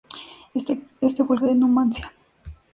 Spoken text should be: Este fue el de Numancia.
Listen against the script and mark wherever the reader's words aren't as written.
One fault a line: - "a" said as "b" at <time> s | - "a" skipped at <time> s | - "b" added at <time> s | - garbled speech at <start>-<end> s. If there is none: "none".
none